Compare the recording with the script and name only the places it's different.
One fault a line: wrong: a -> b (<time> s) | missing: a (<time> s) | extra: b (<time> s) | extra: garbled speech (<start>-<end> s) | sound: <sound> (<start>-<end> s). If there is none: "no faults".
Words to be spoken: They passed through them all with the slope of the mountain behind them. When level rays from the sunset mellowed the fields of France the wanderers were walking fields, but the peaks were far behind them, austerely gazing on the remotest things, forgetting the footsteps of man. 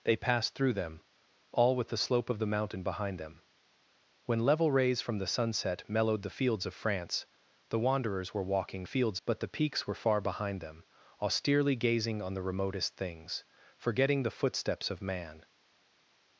no faults